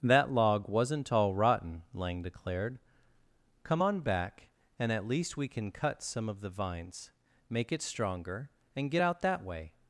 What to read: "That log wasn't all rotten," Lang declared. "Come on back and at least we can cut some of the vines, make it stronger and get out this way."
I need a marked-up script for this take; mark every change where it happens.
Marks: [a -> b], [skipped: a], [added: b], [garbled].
"That log wasn't all rotten," Lang declared. "Come on back and at least we can cut some of the vines, make it stronger and get out [this -> that] way."